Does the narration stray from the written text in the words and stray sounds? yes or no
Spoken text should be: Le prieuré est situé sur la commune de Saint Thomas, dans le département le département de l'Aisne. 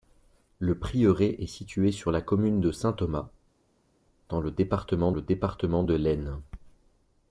no